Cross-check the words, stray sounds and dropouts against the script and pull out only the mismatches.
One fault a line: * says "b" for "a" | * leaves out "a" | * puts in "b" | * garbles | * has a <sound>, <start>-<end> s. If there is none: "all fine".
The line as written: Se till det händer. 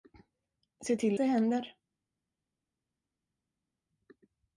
all fine